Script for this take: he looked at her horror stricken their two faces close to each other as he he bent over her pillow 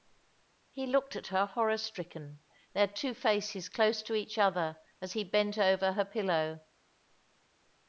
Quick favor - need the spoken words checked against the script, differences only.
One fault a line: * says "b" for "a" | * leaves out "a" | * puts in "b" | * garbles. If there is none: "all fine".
* leaves out "he"